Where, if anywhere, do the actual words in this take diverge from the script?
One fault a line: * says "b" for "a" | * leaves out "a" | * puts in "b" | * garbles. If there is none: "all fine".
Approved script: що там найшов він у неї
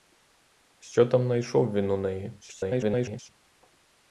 * garbles